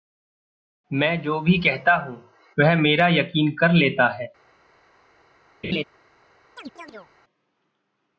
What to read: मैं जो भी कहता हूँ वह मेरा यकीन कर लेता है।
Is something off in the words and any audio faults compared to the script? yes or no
yes